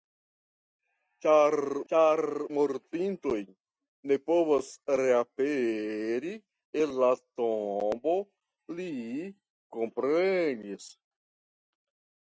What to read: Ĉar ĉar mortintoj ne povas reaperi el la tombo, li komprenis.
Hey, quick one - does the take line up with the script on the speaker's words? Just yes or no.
yes